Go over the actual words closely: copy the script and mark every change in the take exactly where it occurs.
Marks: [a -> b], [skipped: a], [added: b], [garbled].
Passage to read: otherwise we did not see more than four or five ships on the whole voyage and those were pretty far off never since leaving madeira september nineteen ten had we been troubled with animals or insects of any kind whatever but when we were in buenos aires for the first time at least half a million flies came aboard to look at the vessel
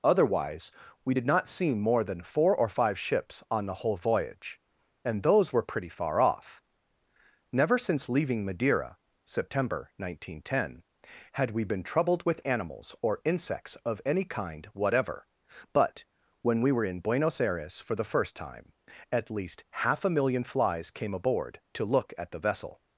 otherwise we did not see more than four or five ships on the whole voyage and those were pretty far off never since leaving madeira september nineteen ten had we been troubled with animals or insects of any kind whatever but when we were in buenos aires for the first time at least half a million flies came aboard to look at the vessel